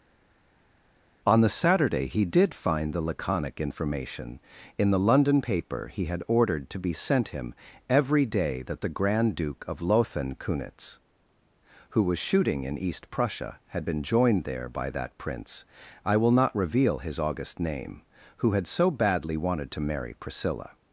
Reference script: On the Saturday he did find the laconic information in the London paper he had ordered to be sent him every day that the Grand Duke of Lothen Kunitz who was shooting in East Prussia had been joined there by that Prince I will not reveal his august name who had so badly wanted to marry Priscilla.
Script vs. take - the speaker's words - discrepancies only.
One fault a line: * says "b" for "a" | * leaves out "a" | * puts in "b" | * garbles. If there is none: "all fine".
all fine